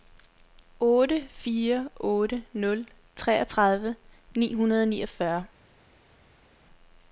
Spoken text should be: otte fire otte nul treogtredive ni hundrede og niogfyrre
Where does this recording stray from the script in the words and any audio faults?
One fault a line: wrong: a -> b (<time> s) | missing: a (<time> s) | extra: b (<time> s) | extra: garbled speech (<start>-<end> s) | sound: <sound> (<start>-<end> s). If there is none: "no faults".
no faults